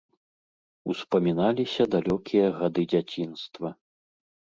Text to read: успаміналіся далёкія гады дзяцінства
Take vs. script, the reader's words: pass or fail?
pass